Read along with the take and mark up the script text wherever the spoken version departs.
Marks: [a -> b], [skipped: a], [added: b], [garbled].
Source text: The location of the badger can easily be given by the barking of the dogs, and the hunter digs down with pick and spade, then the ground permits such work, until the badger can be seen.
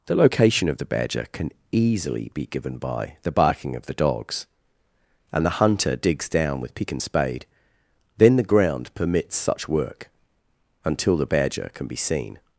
The location of the badger can easily be given by the barking of the dogs, and the hunter digs down with pick and spade, then the ground permits such work, until the badger can be seen.